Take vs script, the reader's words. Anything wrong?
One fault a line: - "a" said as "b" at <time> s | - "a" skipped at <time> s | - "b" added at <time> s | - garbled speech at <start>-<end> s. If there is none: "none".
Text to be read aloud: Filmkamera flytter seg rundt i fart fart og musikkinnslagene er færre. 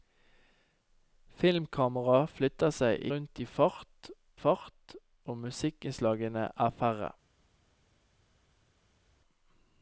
none